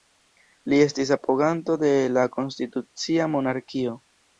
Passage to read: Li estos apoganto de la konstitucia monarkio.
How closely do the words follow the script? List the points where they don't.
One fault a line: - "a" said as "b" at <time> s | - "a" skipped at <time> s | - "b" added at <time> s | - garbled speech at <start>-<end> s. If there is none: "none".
- "estos" said as "estis" at 0.8 s